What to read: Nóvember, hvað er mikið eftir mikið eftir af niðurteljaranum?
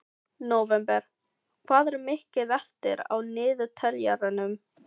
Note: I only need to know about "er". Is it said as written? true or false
true